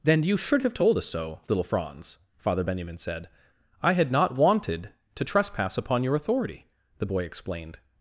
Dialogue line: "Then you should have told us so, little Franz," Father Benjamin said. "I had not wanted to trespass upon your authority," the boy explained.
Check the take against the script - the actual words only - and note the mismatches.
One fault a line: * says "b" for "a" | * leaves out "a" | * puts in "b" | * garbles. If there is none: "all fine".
all fine